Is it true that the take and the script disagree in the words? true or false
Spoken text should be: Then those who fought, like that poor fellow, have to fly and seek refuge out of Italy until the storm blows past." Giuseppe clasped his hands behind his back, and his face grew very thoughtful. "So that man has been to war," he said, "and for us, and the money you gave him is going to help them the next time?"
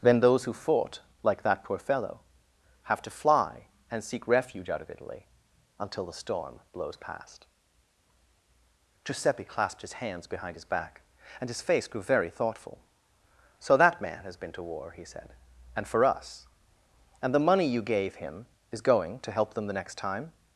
false